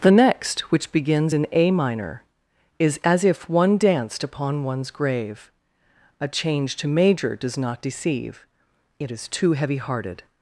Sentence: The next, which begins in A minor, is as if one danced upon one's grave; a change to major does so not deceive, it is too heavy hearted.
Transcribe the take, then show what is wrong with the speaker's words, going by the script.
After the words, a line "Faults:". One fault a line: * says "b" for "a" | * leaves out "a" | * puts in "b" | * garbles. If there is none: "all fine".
The next, which begins in A minor, is as if one danced upon one's grave; a change to major does not deceive, it is too heavy hearted.
Faults:
* leaves out "so"